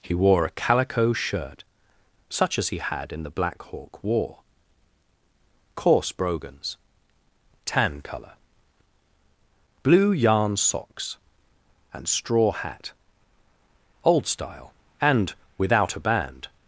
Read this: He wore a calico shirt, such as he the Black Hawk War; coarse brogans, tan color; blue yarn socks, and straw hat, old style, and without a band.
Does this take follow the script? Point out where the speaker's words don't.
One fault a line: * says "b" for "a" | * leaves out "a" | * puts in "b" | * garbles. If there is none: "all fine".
* puts in "had in"